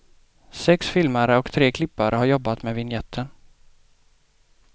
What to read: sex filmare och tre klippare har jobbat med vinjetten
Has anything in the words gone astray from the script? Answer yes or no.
no